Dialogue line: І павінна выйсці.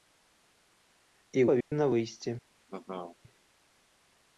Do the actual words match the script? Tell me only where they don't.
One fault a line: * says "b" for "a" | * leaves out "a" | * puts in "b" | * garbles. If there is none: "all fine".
all fine